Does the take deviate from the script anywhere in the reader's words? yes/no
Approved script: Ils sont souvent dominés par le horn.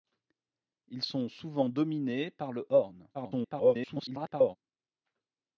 yes